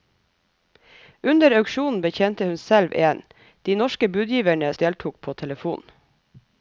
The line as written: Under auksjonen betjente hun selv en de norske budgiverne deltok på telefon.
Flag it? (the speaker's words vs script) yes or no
no